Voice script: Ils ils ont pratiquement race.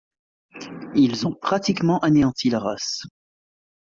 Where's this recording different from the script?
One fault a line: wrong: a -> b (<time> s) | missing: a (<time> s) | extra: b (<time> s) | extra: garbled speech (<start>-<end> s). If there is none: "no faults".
missing: ils (1.3 s)
extra: anéanti la (2.0 s)